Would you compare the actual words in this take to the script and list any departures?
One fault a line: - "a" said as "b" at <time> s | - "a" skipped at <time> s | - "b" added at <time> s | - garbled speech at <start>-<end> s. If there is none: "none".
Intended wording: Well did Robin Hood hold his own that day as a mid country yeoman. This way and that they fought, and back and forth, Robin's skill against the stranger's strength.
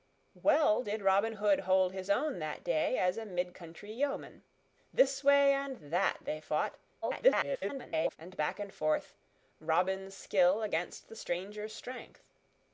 - garbled speech at 7.0-8.2 s